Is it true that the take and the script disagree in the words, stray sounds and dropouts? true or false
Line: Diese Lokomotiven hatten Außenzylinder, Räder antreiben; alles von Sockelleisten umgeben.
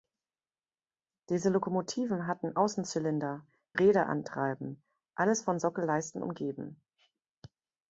false